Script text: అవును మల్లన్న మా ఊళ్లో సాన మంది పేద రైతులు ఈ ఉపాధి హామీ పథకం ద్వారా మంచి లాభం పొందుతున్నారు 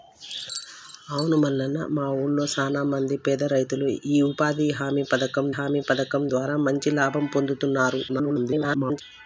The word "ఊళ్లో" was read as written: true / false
true